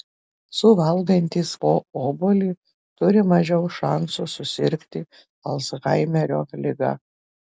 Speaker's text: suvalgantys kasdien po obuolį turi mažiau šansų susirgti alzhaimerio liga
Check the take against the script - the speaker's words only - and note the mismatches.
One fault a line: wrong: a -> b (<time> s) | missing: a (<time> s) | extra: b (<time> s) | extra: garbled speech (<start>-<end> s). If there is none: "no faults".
missing: kasdien (1.5 s)